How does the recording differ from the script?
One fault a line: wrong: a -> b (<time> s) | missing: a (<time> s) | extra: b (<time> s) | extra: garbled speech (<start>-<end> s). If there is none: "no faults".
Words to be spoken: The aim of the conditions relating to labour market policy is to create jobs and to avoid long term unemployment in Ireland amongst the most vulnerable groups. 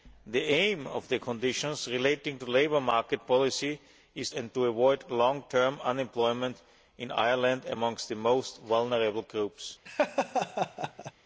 missing: to create jobs (4.3 s)